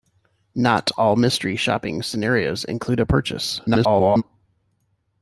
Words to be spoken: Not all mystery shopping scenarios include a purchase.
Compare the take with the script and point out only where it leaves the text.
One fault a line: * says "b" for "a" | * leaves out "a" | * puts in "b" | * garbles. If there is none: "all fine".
* garbles